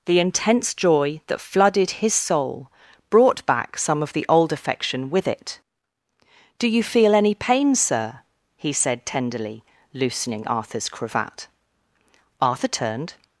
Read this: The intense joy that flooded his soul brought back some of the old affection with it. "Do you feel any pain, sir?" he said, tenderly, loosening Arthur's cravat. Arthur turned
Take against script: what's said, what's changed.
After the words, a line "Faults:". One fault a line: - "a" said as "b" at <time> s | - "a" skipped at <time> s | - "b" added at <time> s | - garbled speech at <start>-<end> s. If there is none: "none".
The intense joy that flooded his soul brought back some of the old affection with it. "Do you feel any pain, sir?" he said, tenderly, loosening Arthur's cravat. Arthur turned
Faults:
none